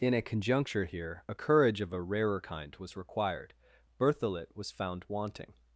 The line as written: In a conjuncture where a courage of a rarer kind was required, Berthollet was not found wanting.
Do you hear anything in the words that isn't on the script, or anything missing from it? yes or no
yes